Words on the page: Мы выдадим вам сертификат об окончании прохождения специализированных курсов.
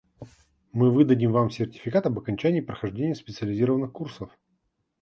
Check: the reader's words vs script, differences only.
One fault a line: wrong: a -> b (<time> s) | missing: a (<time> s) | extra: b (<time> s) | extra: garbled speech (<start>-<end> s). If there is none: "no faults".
no faults